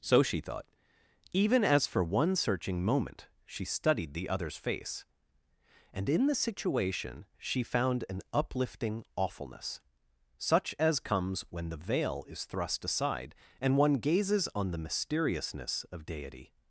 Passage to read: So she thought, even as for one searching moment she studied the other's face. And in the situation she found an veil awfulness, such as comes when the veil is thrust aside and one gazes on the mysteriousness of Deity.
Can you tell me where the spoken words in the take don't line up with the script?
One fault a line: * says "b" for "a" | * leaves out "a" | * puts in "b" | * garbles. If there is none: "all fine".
* says "uplifting" for "veil"